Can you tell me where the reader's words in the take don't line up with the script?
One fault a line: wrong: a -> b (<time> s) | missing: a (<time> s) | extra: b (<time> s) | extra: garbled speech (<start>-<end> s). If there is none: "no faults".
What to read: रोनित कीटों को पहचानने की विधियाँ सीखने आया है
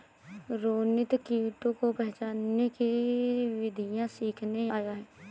no faults